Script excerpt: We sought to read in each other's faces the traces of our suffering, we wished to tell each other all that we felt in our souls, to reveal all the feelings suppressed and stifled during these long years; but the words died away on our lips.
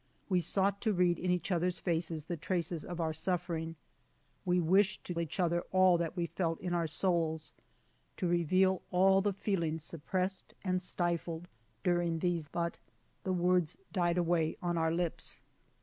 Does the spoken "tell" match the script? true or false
false